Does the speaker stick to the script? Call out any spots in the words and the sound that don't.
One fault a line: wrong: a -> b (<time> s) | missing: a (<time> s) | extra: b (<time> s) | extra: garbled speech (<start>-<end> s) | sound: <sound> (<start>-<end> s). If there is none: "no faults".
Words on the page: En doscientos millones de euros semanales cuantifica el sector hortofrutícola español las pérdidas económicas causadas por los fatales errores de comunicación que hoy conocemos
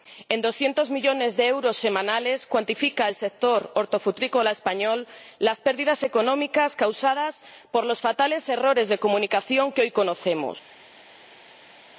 no faults